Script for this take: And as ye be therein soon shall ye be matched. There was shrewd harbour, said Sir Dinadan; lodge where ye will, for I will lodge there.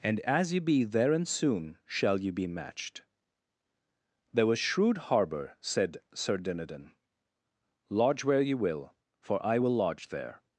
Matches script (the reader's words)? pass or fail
pass